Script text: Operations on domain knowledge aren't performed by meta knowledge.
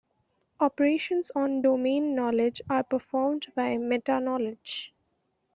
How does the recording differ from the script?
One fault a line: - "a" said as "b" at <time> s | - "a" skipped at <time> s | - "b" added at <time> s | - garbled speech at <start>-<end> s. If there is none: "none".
- "aren't" said as "are" at 2.7 s